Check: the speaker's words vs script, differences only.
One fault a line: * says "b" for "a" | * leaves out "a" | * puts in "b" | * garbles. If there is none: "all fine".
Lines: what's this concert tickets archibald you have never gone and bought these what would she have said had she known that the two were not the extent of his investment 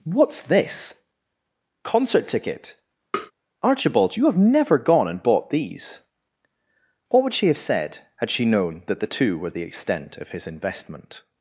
* says "ticket" for "tickets"
* leaves out "not"